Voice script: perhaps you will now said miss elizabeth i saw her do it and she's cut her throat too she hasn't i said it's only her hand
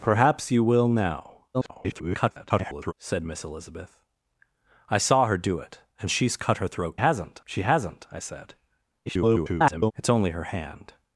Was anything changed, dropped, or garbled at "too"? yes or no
yes